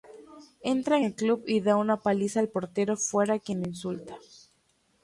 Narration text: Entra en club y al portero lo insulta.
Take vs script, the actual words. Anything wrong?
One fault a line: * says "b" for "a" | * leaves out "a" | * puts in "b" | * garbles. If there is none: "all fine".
* puts in "el"
* puts in "da una paliza"
* puts in "fuera quien"